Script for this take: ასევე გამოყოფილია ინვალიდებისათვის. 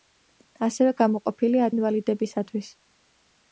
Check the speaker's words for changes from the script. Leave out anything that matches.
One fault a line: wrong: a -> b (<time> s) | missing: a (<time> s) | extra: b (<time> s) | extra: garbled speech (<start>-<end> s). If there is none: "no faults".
no faults